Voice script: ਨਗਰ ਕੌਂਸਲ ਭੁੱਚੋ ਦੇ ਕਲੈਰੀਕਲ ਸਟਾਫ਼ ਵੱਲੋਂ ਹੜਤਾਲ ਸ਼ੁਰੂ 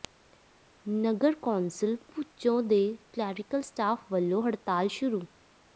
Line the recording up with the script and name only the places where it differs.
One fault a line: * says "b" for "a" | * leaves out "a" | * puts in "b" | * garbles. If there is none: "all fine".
all fine